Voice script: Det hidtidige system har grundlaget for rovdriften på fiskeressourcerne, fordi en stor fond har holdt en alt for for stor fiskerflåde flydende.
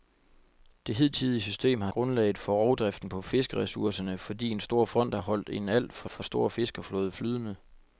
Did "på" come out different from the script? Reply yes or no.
no